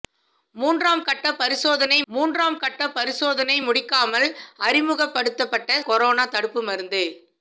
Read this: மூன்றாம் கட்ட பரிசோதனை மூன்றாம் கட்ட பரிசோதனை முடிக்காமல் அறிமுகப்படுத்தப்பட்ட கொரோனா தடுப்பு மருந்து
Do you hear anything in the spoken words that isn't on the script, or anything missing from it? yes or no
no